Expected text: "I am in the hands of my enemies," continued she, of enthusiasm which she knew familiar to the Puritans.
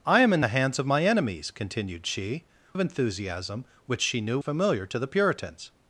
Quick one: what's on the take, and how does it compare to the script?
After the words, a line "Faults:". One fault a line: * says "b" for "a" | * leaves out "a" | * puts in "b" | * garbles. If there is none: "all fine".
"I am in the hands of my enemies," continued she, of enthusiasm which she knew familiar to the Puritans.
Faults:
all fine